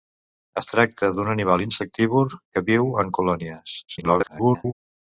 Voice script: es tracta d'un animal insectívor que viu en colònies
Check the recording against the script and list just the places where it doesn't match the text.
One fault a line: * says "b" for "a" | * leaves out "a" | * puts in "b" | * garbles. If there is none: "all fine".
* garbles